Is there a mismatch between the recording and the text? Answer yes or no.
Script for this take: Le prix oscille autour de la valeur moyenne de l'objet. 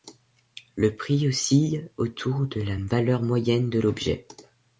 no